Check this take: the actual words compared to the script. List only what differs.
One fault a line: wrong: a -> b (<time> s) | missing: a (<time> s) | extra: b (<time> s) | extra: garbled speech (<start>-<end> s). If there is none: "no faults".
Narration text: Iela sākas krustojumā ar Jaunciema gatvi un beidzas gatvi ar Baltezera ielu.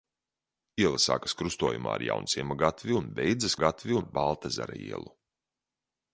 no faults